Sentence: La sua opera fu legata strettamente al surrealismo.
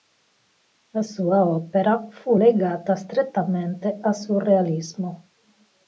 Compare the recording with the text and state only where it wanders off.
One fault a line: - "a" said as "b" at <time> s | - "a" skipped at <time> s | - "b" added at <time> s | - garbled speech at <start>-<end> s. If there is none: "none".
none